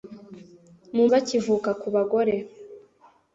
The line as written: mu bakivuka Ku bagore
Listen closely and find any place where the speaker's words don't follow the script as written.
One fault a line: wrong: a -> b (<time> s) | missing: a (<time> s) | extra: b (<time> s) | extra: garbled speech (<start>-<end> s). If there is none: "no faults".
no faults